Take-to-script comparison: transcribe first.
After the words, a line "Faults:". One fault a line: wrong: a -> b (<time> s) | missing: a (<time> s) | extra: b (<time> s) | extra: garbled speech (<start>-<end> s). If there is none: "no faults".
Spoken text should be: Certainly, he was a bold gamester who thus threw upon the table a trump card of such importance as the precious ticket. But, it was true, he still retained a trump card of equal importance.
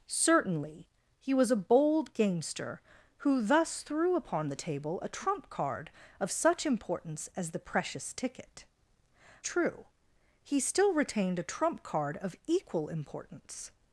Certainly, he was a bold gamester who thus threw upon the table a trump card of such importance as the precious ticket. True, he still retained a trump card of equal importance.
Faults:
missing: But it was (8.7 s)